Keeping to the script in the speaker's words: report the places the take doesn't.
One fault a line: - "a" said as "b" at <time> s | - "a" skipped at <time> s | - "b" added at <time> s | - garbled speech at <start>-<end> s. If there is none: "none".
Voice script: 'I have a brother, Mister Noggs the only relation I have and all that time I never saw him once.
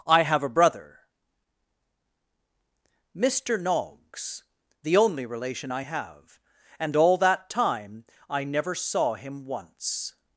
none